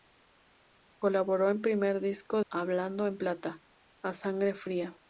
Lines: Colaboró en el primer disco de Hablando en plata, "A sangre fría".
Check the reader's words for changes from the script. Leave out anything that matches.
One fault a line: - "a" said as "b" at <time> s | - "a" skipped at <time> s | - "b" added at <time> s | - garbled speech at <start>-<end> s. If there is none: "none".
- "de" skipped at 2.4 s